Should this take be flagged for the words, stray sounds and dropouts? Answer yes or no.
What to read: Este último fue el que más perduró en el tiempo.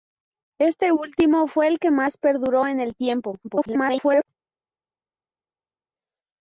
yes